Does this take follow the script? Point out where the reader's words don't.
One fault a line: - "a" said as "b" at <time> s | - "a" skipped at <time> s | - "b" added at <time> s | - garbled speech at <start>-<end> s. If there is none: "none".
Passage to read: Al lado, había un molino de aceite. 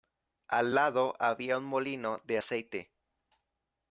none